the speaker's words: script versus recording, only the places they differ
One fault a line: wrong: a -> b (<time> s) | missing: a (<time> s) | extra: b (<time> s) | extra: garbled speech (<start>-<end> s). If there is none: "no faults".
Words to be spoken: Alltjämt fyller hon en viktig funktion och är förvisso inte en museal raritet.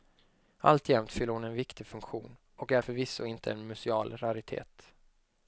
no faults